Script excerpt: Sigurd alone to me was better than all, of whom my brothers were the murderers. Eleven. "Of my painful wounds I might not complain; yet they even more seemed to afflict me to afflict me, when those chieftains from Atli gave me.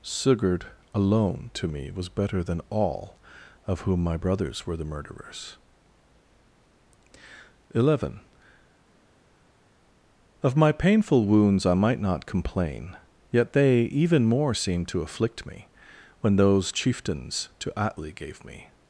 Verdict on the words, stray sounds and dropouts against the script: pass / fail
fail